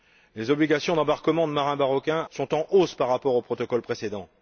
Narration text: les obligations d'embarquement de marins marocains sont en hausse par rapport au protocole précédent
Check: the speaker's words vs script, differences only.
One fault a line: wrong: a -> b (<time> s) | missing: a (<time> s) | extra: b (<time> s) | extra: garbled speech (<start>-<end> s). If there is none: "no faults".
no faults